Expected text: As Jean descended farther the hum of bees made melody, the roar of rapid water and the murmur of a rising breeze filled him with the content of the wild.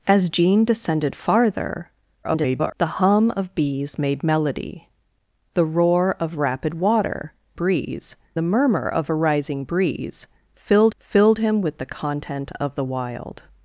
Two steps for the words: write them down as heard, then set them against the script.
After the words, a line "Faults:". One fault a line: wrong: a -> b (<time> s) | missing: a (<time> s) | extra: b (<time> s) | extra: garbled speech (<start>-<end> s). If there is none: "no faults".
As Jean descended farther [garbled] the hum of bees made melody, the roar of rapid water breeze the murmur of a rising breeze filled filled him with the content of the wild.
Faults:
extra: garbled speech (2.2-2.7 s)
wrong: and -> breeze (7.5 s)
extra: filled (11.0 s)